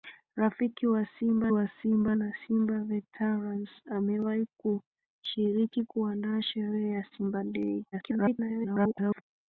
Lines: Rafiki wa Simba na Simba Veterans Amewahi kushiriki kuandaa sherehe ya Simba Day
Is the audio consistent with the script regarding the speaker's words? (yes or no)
no